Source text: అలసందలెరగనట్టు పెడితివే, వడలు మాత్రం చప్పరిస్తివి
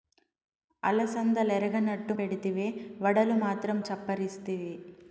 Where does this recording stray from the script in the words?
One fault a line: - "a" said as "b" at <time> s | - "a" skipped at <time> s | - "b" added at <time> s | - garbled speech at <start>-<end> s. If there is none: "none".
none